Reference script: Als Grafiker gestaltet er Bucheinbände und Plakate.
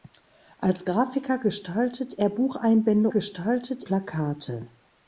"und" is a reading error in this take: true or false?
true